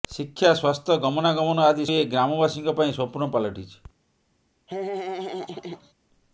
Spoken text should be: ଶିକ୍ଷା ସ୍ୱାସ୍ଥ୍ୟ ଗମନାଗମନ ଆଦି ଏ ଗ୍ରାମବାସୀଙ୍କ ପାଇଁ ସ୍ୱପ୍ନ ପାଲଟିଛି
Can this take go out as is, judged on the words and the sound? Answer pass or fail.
fail